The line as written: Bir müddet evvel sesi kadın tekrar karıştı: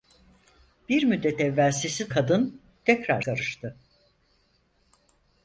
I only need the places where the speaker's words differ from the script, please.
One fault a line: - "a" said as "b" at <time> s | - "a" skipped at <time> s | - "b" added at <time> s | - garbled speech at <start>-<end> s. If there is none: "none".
none